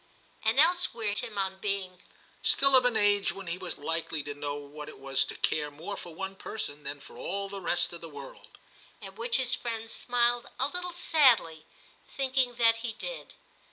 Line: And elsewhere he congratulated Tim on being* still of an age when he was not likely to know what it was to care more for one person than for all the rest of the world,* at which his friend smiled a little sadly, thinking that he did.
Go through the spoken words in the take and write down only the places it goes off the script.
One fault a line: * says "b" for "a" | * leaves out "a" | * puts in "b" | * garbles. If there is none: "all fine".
* leaves out "he congratulated"
* leaves out "not"